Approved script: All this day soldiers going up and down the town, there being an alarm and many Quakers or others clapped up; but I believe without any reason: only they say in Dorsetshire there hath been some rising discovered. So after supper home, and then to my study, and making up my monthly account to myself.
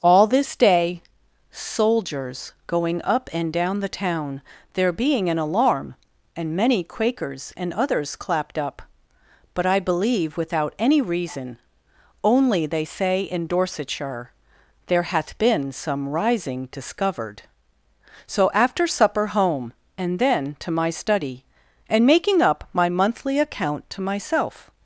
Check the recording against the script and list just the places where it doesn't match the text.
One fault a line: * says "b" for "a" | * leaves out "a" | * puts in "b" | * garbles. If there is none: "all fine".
* says "and" for "or"